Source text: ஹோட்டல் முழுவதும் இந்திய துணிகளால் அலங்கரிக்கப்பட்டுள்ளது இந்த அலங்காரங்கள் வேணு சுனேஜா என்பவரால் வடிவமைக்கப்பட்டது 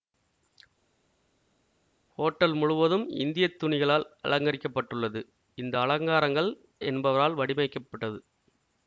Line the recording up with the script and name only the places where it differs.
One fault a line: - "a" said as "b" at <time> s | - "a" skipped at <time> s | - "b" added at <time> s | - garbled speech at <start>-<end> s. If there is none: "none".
- "வேணு சுனேஜா" skipped at 6.5 s